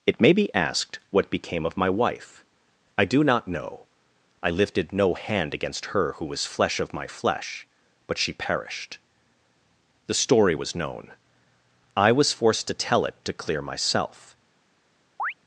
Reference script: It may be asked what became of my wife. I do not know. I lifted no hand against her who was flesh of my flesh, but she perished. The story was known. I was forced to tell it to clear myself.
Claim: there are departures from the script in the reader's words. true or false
false